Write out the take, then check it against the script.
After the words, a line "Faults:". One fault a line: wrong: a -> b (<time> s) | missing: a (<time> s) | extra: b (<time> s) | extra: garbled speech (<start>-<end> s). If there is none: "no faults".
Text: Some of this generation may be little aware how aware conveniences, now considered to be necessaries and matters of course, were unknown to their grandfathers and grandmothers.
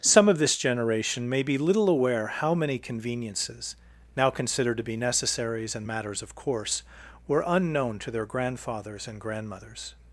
Some of this generation may be little aware how many conveniences, now considered to be necessaries and matters of course, were unknown to their grandfathers and grandmothers.
Faults:
wrong: aware -> many (2.5 s)